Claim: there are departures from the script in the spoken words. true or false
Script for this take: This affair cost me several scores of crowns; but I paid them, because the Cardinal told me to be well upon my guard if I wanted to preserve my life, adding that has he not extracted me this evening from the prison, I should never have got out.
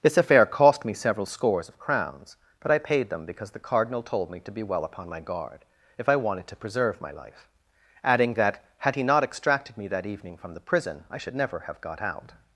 true